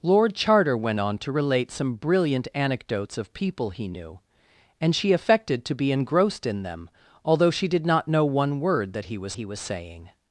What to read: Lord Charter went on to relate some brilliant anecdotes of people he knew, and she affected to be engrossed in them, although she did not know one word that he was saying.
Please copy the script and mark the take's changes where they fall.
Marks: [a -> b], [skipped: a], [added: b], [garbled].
Lord Charter went on to relate some brilliant anecdotes of people he knew, and she affected to be engrossed in them, although she did not know one word that he was [added: he was] saying.